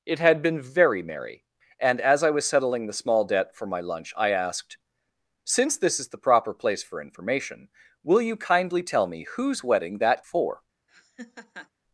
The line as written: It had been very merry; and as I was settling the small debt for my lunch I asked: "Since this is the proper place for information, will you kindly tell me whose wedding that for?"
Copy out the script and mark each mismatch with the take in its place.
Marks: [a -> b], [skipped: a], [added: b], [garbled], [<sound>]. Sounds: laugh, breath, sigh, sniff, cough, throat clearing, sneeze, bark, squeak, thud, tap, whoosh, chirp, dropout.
It had been very merry; and as I was settling the small debt for my lunch I asked: "Since this is the proper place for information, will you kindly tell me whose wedding that for?" [laugh]